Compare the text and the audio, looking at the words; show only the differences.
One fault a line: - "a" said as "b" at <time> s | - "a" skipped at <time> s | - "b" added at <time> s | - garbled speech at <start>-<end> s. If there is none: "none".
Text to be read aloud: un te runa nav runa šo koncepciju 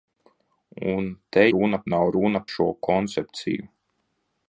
none